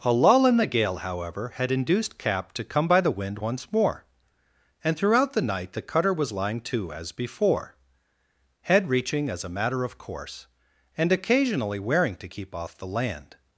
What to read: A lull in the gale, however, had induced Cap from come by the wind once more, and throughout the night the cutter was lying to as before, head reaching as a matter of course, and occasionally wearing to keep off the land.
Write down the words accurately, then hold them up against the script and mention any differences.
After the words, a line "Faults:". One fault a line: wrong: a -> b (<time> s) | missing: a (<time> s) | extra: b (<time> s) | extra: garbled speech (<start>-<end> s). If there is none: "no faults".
A lull in the gale, however, had induced Cap to come by the wind once more, and throughout the night the cutter was lying to as before, head reaching as a matter of course, and occasionally wearing to keep off the land.
Faults:
wrong: from -> to (2.5 s)